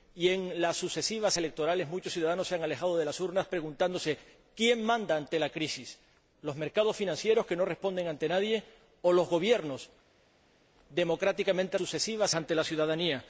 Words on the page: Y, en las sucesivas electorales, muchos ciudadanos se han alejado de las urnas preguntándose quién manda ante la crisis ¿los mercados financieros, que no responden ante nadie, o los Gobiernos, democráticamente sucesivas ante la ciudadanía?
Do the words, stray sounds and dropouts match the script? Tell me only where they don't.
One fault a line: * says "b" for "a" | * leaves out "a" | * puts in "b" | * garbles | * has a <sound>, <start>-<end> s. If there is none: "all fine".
all fine